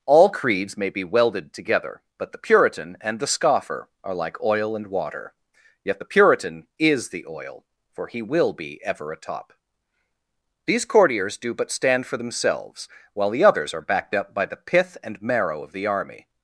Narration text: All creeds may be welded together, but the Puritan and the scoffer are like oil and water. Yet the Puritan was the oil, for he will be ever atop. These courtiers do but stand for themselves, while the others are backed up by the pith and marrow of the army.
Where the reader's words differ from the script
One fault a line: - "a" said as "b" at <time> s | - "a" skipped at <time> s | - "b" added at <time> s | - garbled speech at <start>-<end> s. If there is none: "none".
- "was" said as "is" at 6.8 s